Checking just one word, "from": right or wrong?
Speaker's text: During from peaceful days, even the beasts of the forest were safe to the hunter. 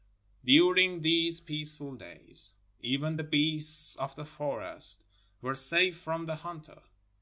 wrong